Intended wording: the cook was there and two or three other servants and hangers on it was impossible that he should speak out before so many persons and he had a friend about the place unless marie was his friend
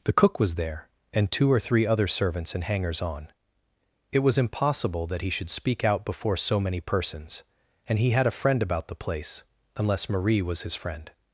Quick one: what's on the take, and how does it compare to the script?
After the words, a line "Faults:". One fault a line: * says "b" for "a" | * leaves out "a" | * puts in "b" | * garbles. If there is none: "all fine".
the cook was there and two or three other servants and hangers on it was impossible that he should speak out before so many persons and he had a friend about the place unless marie was his friend
Faults:
all fine